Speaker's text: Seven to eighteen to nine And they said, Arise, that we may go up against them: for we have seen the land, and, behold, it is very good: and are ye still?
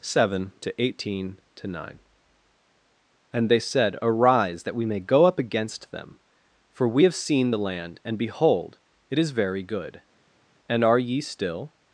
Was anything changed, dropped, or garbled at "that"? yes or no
no